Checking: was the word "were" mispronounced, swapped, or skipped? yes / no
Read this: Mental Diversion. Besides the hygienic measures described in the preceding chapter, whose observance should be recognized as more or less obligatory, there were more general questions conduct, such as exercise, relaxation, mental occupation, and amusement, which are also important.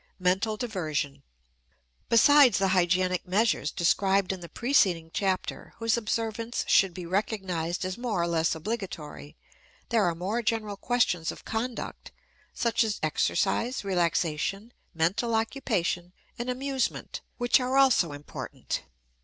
yes